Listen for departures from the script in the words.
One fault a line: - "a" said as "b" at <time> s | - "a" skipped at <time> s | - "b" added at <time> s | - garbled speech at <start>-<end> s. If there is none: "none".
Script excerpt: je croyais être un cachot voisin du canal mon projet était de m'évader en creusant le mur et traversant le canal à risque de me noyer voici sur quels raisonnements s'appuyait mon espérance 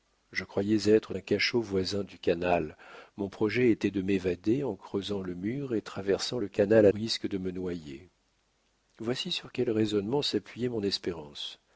none